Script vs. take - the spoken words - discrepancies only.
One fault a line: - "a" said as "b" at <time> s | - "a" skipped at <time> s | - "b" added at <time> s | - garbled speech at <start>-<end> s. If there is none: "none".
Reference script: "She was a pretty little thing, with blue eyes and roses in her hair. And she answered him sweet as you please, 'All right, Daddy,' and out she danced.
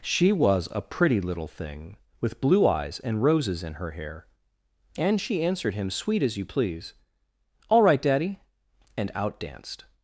- "she" skipped at 9.4 s